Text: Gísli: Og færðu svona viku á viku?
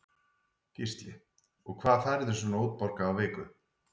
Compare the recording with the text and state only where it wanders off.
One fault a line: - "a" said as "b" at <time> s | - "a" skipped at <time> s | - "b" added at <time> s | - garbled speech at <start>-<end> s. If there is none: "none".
- "hvað" added at 1.8 s
- "viku" said as "útborgað" at 2.7 s